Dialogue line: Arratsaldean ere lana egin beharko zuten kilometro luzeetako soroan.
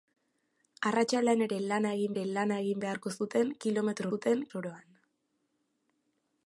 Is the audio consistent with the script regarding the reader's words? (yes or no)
no